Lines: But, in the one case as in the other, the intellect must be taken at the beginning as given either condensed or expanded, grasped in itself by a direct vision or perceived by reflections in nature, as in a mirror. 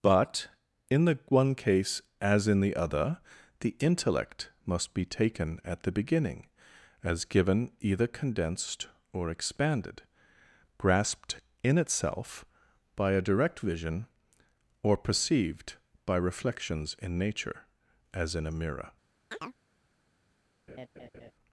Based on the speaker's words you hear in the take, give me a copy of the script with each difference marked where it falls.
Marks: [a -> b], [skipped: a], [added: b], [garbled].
But, in the one case as in the other, the intellect must be taken at the beginning as given either condensed or expanded, grasped in itself by a direct vision or perceived by reflections in nature, as in a mirror.